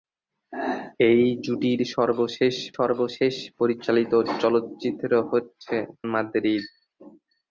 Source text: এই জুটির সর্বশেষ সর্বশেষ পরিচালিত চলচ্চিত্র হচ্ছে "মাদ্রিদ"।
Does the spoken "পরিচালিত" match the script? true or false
true